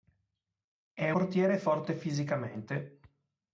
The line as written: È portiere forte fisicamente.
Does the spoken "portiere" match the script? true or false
true